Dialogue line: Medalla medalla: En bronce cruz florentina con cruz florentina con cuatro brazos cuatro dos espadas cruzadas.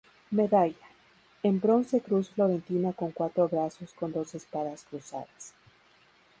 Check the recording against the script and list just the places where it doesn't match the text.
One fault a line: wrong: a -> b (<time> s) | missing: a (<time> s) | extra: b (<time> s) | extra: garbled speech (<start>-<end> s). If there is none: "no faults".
missing: medalla (0.9 s)
missing: cruz florentina con (3.1 s)
wrong: cuatro -> con (3.9 s)